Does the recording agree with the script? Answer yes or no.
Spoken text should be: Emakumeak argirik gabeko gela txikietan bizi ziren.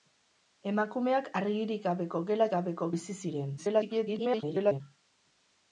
no